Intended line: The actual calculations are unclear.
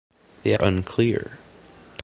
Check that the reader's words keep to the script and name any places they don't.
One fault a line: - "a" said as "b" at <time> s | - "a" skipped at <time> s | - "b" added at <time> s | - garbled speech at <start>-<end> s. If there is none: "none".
- "actual calculations are" skipped at 0.6 s